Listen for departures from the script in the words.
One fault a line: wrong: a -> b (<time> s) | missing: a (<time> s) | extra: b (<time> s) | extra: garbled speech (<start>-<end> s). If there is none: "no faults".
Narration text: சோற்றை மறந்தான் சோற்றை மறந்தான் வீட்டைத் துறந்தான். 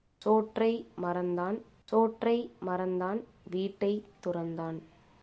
no faults